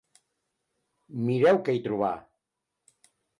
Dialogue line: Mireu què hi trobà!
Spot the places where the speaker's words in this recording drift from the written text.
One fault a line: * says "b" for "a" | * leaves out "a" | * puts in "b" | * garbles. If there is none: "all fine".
all fine